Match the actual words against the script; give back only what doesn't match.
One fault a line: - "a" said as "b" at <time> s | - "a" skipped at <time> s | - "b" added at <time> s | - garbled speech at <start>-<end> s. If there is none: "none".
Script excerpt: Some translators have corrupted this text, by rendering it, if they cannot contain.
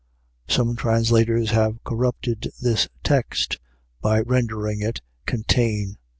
- "if they cannot" skipped at 5.0 s